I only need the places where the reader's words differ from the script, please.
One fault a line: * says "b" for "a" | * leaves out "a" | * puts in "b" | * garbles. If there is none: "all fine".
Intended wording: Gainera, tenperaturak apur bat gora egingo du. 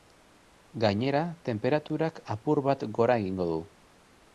all fine